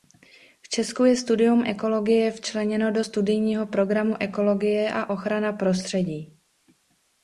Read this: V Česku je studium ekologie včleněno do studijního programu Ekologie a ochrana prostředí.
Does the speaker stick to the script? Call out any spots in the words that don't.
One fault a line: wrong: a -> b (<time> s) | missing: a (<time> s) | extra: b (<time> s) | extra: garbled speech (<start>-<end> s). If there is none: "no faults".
no faults